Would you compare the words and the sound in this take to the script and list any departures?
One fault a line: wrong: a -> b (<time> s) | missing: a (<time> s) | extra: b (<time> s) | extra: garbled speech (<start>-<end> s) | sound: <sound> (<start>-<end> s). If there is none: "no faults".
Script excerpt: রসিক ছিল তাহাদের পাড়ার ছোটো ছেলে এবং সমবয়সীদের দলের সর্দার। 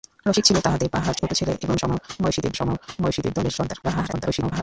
sound: dropout (1.2-1.2 s)
extra: সমবয়সীদের (2.5 s)
extra: garbled speech (3.8-4.6 s)